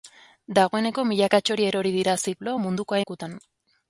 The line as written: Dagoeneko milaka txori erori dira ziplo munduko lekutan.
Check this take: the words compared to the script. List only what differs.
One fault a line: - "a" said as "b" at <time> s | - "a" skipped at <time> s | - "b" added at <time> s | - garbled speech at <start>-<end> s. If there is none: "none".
none